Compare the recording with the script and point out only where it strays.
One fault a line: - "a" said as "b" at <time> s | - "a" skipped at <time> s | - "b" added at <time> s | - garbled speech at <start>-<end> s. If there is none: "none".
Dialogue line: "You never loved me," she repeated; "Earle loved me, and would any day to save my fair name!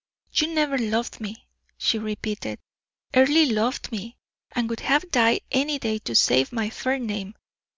- "have died" added at 4.8 s